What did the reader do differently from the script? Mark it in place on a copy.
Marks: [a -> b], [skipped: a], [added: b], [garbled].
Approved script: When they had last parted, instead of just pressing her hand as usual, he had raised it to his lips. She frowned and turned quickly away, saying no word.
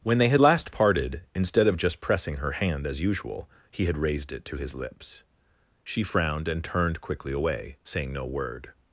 When they had last parted, instead of just pressing her hand as usual, he had raised it to his lips. She frowned and turned quickly away, saying no word.